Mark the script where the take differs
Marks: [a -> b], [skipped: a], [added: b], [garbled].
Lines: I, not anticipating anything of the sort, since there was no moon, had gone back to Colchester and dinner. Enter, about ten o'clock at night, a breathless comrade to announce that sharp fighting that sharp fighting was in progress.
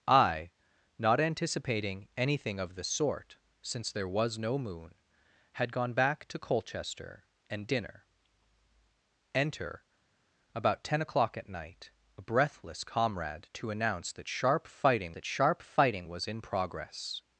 I, not anticipating anything of the sort, since there was no moon, had gone back to Colchester and dinner. Enter, about ten o'clock at night, a breathless comrade to announce that sharp fighting that sharp fighting was in progress.